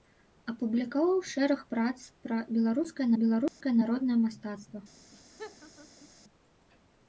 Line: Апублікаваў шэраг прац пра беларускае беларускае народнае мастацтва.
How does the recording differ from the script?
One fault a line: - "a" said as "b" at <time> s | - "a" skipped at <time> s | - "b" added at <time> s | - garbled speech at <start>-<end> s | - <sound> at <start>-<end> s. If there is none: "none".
- dropout at 3.5-3.6 s
- laugh at 5.1-6.1 s